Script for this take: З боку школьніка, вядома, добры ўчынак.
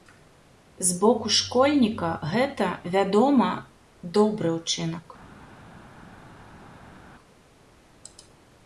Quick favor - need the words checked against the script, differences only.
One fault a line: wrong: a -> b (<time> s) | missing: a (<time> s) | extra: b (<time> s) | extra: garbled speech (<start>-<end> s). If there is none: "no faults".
extra: гэта (2.3 s)